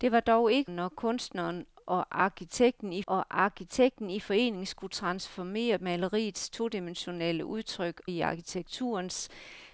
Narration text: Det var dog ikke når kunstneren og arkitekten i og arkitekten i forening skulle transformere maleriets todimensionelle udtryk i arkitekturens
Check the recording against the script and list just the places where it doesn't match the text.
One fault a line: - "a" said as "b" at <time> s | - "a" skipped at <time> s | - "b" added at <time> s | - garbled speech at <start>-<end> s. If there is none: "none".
none